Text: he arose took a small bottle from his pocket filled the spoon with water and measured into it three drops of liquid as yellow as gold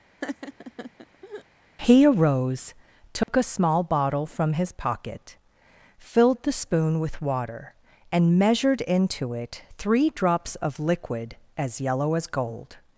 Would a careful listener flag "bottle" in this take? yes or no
no